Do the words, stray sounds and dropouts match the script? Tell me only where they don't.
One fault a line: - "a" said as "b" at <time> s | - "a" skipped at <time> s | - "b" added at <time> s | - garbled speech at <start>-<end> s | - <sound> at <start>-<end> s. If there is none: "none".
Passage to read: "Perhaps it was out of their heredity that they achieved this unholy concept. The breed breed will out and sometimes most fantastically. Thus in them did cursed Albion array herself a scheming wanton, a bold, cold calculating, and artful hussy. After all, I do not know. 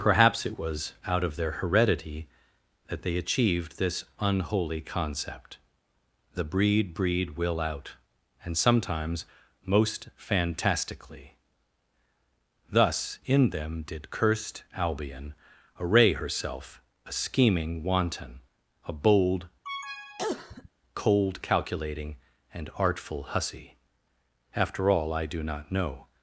- cough at 19.6-20.7 s